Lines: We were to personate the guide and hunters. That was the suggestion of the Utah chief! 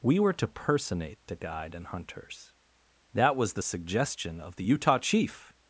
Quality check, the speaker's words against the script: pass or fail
pass